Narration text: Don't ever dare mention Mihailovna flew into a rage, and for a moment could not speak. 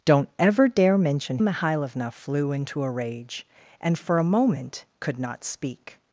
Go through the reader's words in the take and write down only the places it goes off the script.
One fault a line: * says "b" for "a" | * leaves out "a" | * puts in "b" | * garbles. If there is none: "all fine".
all fine